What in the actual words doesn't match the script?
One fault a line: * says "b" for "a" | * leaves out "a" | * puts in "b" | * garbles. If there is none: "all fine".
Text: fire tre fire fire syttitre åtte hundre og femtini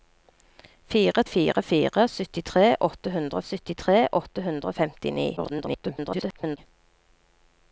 * says "fire" for "tre"
* says "syttitre åtte hundre" for "fire"
* garbles